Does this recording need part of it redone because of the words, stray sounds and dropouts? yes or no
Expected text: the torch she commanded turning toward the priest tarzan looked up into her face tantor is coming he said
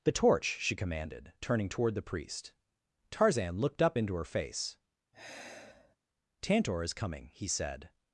yes